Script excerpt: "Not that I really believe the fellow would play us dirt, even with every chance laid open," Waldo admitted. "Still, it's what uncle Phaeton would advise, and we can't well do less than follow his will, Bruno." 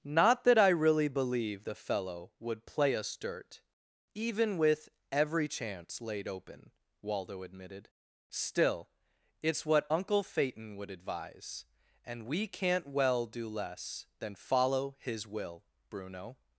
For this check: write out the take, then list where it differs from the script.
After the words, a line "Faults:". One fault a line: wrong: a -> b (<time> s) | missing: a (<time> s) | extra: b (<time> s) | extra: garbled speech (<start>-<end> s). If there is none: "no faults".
"Not that I really believe the fellow would play us dirt, even with every chance laid open," Waldo admitted. "Still, it's what uncle Phaeton would advise, and we can't well do less than follow his will, Bruno."
Faults:
no faults